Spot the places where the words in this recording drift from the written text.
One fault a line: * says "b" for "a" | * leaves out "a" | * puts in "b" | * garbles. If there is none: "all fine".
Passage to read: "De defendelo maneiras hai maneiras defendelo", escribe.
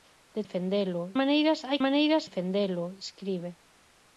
all fine